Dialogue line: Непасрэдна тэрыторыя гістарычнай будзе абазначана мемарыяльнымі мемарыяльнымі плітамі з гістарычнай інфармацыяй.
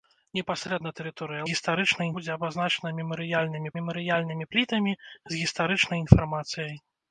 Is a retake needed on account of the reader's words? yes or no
no